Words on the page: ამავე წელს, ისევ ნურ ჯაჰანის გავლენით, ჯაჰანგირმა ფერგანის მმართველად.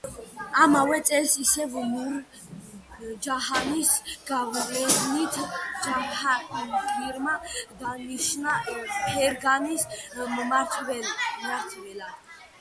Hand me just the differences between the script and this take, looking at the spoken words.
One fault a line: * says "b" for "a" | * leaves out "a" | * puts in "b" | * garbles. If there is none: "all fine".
* puts in "დანიშნა"